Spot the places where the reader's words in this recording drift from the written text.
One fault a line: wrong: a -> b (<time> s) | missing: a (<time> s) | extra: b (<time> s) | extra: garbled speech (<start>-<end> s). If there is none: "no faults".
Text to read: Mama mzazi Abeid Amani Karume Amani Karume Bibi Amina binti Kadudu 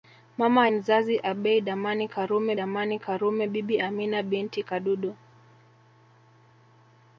no faults